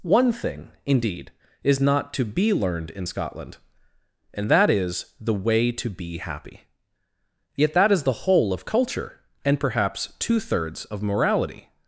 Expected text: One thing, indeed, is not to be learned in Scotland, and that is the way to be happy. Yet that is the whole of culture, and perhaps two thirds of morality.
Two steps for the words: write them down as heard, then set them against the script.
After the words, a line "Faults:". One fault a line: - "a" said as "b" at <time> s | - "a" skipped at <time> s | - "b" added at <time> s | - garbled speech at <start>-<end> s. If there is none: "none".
One thing, indeed, is not to be learned in Scotland, and that is the way to be happy. Yet that is the whole of culture, and perhaps two thirds of morality.
Faults:
none